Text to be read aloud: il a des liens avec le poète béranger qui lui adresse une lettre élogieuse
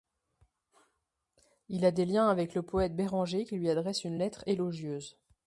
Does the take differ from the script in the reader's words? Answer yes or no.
no